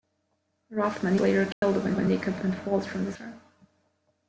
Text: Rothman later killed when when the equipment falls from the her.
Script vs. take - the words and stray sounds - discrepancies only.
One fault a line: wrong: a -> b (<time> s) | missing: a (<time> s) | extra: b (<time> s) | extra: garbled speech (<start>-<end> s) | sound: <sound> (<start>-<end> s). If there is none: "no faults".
sound: dropout (1.5-1.6 s)